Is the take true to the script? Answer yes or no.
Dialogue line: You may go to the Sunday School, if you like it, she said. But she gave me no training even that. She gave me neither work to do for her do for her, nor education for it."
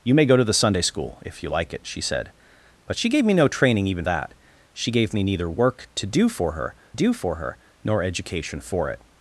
yes